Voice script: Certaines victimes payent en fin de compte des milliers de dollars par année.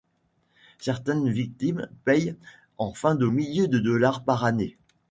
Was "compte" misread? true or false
true